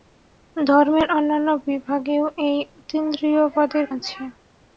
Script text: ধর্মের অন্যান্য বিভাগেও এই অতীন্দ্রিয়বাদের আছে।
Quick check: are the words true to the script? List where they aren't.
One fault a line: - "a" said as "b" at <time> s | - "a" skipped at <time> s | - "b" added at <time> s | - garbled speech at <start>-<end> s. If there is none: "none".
none